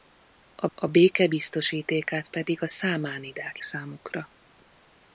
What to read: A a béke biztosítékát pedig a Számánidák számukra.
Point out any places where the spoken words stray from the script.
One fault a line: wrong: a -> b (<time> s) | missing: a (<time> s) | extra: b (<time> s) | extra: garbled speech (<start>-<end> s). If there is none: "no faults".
no faults